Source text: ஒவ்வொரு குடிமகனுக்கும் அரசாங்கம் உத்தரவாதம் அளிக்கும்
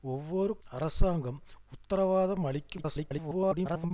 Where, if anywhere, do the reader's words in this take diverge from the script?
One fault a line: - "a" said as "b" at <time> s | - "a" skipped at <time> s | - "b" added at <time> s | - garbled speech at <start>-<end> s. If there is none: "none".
- "குடிமகனுக்கும்" skipped at 0.5 s
- garbled speech at 2.8-3.9 s